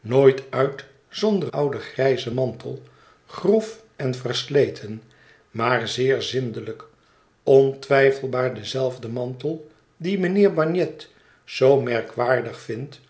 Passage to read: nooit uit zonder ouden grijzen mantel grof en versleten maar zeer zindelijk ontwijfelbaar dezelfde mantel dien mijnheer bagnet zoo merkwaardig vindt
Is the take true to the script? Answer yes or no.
yes